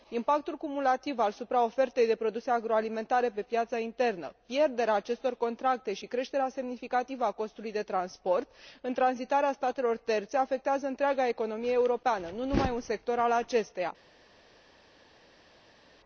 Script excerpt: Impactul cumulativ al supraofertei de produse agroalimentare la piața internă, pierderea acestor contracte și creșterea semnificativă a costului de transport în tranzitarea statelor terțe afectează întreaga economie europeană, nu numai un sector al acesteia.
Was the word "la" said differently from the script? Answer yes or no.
yes